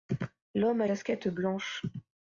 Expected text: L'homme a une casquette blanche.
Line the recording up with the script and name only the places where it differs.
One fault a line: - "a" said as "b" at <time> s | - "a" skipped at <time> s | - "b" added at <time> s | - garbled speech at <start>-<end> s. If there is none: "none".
- "une" skipped at 0.9 s